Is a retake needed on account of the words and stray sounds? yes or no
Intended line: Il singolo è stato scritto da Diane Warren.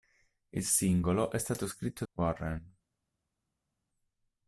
yes